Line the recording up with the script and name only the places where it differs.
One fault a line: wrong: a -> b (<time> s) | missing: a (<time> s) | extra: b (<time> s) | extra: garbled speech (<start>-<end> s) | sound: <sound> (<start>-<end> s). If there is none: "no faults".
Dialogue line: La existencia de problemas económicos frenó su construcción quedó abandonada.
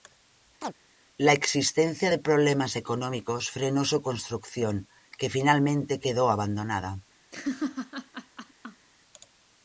sound: chirp (0.6-0.7 s)
extra: que finalmente (5.2 s)
sound: laugh (7.3-8.9 s)